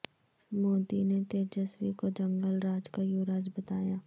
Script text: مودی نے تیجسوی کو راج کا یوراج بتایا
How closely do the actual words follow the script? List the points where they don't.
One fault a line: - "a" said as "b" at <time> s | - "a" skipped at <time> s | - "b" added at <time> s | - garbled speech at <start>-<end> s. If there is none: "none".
- "جنگل" added at 2.2 s